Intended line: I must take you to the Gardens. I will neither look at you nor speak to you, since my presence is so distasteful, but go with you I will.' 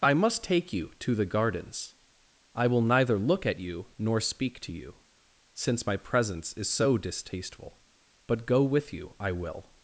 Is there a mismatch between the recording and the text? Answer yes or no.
no